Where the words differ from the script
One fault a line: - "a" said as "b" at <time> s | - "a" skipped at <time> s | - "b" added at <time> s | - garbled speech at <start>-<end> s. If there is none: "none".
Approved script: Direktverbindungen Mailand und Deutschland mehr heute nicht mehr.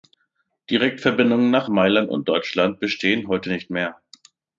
- "nach" added at 1.5 s
- "mehr" said as "bestehen" at 2.8 s